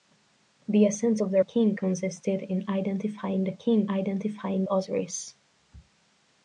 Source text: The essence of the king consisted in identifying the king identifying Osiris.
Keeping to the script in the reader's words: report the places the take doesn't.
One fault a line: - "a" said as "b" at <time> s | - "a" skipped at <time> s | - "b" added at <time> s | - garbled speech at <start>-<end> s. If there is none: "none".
none